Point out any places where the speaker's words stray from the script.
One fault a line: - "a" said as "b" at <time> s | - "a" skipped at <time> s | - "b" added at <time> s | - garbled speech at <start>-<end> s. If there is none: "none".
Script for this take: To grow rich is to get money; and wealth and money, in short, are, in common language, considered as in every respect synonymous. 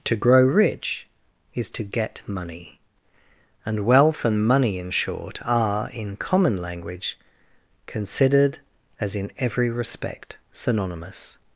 none